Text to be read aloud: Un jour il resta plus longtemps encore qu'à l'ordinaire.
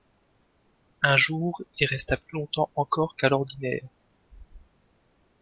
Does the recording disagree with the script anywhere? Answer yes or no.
no